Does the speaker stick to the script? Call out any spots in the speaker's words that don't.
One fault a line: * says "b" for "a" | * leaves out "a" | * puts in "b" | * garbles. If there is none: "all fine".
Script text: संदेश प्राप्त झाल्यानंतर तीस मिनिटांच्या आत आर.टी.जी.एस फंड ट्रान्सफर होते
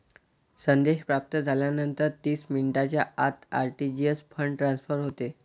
all fine